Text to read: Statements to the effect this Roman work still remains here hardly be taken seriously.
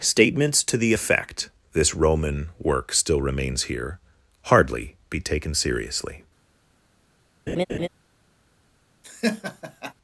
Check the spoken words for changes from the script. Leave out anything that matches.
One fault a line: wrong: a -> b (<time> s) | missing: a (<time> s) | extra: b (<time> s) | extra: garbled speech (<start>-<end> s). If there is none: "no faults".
no faults